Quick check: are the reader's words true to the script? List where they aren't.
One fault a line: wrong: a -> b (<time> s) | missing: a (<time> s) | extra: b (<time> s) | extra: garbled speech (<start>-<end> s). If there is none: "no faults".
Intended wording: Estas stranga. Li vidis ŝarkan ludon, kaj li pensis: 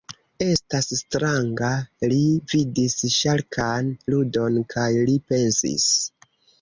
no faults